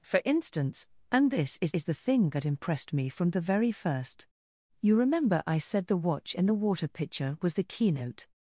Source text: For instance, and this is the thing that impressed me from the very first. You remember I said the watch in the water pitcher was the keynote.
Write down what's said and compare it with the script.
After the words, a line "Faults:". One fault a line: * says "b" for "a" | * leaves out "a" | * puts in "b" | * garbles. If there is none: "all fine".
For instance, and this is is the thing that impressed me from the very first. You remember I said the watch in the water pitcher was the keynote.
Faults:
* puts in "is"